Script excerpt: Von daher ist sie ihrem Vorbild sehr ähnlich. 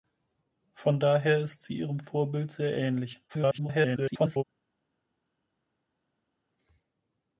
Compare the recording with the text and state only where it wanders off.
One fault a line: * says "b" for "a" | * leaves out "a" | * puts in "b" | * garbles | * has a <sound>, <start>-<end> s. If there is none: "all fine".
* garbles